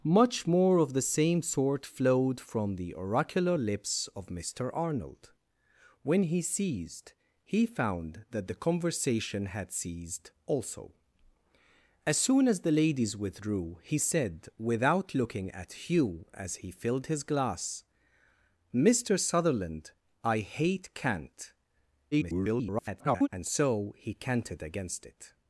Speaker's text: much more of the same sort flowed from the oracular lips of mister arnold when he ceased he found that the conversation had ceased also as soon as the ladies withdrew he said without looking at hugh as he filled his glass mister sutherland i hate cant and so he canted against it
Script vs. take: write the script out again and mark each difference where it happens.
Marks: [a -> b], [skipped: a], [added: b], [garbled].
much more of the same sort flowed from the oracular lips of mister arnold when he ceased he found that the conversation had ceased also as soon as the ladies withdrew he said without looking at hugh as he filled his glass mister sutherland i hate cant [garbled] and so he canted against it